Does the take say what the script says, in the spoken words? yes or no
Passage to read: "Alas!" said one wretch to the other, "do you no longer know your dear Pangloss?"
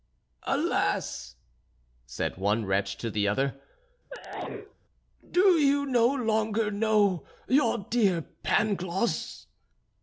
yes